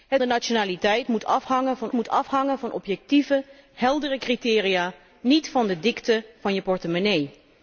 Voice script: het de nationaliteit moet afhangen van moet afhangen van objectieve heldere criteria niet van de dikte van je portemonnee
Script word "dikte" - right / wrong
right